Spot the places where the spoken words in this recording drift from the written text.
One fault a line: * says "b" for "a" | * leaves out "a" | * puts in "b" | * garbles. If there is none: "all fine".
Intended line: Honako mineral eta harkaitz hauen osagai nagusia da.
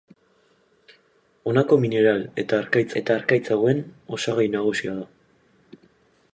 * puts in "eta harkaitz"